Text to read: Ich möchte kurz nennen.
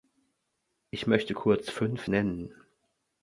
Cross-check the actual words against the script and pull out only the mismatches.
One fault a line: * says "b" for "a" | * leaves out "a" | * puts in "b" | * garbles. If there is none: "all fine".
* puts in "fünf"